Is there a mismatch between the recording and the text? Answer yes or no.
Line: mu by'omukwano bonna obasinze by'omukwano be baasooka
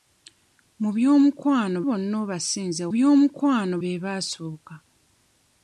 no